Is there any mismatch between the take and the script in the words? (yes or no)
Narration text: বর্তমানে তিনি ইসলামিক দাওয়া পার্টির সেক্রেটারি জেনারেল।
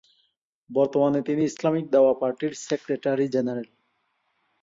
no